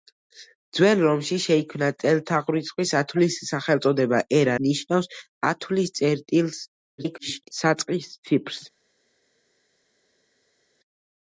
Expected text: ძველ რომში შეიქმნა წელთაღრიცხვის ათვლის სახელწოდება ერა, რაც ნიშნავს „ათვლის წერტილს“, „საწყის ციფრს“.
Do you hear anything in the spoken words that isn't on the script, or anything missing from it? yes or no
yes